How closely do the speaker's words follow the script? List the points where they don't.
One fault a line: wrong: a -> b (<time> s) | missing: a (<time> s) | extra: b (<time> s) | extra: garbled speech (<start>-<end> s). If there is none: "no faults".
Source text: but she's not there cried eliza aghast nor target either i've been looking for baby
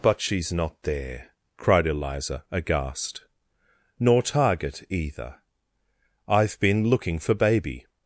no faults